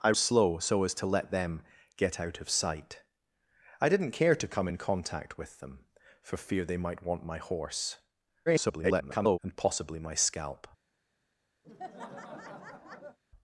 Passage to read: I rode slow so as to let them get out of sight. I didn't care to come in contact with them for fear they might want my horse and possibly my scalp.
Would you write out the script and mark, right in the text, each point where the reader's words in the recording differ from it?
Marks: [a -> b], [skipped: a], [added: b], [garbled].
I [skipped: rode] slow so as to let them get out of sight. I didn't care to come in contact with them for fear they might want my horse [garbled] and possibly my scalp.